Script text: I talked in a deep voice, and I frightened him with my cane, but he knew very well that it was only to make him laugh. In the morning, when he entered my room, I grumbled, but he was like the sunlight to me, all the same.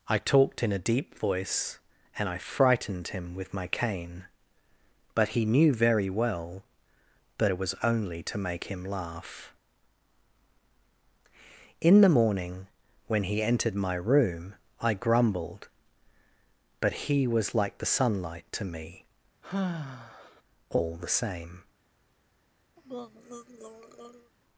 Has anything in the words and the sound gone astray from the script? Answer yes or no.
yes